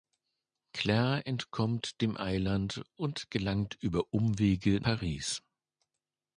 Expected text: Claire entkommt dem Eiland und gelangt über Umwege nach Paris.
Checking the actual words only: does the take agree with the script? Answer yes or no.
no